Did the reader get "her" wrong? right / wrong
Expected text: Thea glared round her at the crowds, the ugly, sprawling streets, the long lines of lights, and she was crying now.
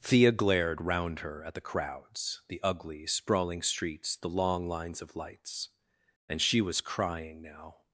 right